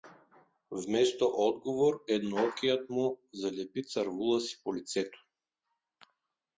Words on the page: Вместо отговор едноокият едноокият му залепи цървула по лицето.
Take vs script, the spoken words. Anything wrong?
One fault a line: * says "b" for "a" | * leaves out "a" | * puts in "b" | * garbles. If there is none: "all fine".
* leaves out "едноокият"
* puts in "си"